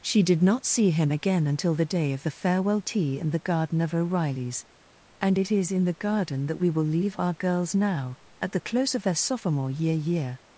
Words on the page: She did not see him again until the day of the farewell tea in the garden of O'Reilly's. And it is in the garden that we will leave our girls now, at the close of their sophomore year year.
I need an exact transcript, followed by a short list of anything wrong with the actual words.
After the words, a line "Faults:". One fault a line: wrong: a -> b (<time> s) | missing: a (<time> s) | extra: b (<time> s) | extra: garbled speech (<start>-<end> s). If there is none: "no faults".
She did not see him again until the day of the farewell tea in the garden of O'Reilly's. And it is in the garden that we will leave our girls now, at the close of their sophomore year year.
Faults:
no faults